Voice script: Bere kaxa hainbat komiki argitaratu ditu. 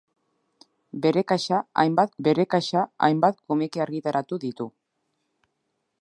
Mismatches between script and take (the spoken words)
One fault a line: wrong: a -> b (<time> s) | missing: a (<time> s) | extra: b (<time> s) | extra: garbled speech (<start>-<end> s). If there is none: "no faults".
extra: bere kaxa hainbat (2.2 s)